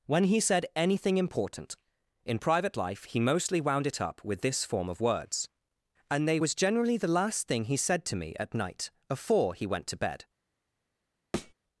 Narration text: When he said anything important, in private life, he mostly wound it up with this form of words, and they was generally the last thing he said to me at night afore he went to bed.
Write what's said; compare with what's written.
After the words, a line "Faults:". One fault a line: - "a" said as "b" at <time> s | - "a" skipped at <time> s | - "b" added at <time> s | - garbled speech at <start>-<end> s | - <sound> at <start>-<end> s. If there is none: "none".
When he said anything important, in private life, he mostly wound it up with this form of words, and they was generally the last thing he said to me at night afore he went to bed.
Faults:
- thud at 11.3-11.5 s